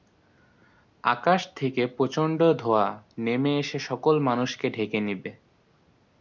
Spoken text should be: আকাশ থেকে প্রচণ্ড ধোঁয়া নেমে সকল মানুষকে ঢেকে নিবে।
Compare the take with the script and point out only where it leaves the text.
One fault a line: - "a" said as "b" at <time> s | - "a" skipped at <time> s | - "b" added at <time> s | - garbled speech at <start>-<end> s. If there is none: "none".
- "এসে" added at 3.6 s